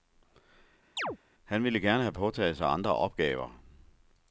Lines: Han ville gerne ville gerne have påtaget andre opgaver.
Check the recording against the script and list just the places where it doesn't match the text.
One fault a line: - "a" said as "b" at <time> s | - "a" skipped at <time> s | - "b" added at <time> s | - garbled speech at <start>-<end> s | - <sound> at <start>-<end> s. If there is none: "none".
- chirp at 1.0-1.2 s
- "ville gerne" skipped at 2.0 s
- "sig" added at 2.6 s